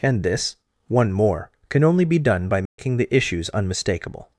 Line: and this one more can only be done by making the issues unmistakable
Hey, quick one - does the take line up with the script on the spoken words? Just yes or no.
yes